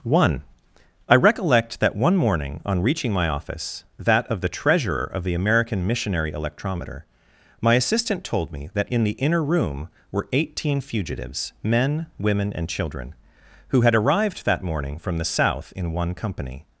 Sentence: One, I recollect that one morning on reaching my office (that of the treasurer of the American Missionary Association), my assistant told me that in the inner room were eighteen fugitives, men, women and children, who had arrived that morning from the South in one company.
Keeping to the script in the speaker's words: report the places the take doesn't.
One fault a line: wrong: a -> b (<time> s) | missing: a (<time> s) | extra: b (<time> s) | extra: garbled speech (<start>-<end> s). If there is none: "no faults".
wrong: Association -> Electrometer (6.3 s)